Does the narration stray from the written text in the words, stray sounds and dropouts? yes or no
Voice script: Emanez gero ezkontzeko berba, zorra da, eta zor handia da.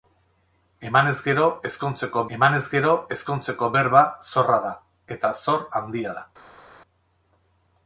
yes